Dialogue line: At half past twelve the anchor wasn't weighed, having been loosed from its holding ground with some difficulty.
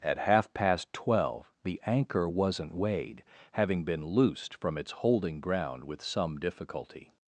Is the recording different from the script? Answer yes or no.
no